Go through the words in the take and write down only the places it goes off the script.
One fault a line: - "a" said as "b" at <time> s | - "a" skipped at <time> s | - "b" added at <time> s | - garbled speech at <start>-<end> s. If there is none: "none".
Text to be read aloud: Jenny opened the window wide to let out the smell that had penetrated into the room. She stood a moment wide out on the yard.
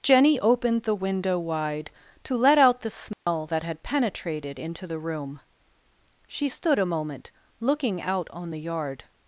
- "wide" said as "looking" at 7.6 s